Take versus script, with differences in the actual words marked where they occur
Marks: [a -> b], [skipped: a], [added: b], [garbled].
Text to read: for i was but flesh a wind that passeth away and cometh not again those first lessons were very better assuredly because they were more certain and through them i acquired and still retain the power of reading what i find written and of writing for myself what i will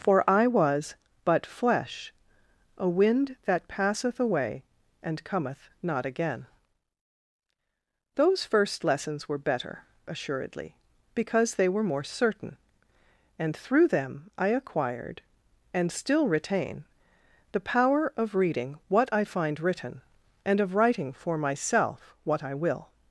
for i was but flesh a wind that passeth away and cometh not again those first lessons were [skipped: very] better assuredly because they were more certain and through them i acquired and still retain the power of reading what i find written and of writing for myself what i will